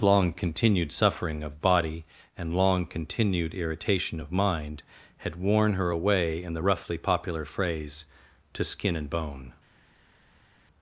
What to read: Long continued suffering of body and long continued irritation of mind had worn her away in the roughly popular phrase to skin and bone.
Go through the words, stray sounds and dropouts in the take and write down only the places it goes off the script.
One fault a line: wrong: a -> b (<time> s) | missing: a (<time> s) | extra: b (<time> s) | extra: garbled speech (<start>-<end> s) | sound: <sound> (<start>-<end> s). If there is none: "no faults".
no faults